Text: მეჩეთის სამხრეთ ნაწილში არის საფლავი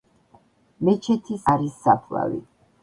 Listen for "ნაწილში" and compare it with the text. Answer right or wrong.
wrong